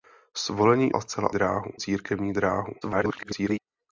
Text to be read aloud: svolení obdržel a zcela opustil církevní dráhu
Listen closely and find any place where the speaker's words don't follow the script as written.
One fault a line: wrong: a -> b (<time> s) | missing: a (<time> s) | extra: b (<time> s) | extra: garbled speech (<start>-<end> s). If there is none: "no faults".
missing: obdržel (0.9 s)
wrong: opustil -> dráhu (1.3 s)
extra: garbled speech (2.8-3.6 s)